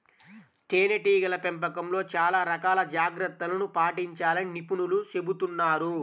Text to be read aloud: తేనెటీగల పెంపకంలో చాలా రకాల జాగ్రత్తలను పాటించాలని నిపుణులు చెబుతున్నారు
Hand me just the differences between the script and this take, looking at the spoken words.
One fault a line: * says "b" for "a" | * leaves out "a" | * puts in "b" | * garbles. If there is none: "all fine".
all fine